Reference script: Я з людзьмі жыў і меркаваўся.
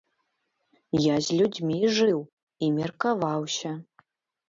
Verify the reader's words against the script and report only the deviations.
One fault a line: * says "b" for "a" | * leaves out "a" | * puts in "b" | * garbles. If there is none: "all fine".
all fine